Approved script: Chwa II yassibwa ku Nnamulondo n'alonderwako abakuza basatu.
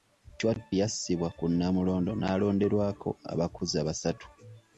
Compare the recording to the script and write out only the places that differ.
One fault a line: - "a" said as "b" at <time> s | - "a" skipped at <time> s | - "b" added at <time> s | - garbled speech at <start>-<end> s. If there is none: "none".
- "II" skipped at 0.5 s